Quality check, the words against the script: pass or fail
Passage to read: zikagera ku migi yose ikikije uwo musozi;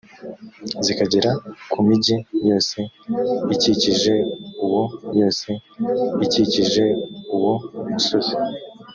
fail